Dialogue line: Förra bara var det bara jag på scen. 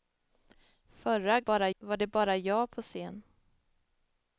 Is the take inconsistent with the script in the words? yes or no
no